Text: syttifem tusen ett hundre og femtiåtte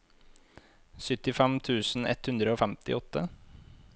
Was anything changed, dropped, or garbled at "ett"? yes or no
no